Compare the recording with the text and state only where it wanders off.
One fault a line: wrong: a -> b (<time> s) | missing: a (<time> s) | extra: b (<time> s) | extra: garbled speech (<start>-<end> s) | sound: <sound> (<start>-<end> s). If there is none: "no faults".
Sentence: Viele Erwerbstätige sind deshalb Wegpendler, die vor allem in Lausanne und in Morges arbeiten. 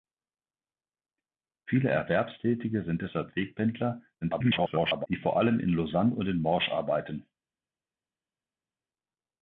extra: garbled speech (4.2-5.1 s)